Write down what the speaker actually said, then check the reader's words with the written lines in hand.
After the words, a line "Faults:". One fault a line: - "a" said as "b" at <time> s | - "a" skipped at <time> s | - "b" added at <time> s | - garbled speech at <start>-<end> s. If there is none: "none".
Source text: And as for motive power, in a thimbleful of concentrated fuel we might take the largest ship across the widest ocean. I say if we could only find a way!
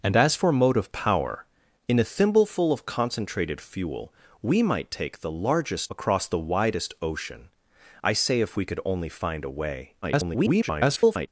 And as for motive power, in a thimbleful of concentrated fuel we might take the largest across the widest ocean. I say if we could only find a way! [garbled]
Faults:
- "ship" skipped at 5.9 s
- garbled speech at 10.0-11.3 s